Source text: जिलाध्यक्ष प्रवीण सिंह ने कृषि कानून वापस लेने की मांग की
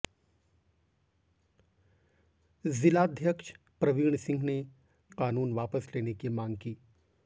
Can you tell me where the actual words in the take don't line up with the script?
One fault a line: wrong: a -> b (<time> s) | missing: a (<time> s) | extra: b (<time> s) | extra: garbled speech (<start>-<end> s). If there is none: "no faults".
missing: कृषि (4.6 s)